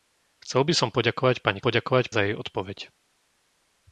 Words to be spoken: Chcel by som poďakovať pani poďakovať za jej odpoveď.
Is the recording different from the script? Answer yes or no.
no